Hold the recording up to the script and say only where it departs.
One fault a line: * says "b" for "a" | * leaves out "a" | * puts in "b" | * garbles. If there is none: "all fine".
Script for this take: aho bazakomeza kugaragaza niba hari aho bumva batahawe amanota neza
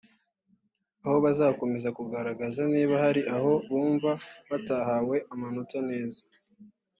all fine